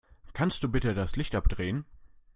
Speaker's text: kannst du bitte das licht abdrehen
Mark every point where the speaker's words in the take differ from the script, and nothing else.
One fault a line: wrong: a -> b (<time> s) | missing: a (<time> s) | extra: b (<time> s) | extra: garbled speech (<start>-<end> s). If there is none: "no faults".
no faults